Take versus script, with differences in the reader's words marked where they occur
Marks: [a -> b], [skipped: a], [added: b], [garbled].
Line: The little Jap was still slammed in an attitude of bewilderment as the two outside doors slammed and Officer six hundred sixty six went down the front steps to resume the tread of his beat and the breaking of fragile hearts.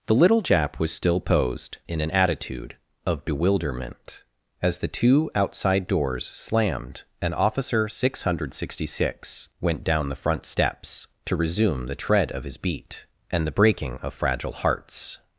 The little Jap was still [slammed -> posed] in an attitude of bewilderment as the two outside doors slammed and Officer six hundred sixty six went down the front steps to resume the tread of his beat and the breaking of fragile hearts.